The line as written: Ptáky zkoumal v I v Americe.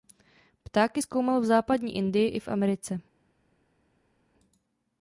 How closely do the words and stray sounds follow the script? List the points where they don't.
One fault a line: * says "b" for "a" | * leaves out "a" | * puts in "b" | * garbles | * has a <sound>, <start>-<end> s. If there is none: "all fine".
* puts in "Západní Indii"